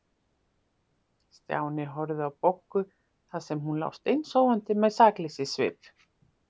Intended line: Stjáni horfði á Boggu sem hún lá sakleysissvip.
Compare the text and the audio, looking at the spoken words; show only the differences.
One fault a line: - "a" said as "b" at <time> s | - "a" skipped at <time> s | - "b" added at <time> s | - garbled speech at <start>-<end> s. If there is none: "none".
- "þar" added at 2.9 s
- "steinsofandi með" added at 4.0 s